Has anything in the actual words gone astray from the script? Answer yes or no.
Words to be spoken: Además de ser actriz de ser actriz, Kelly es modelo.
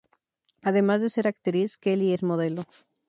yes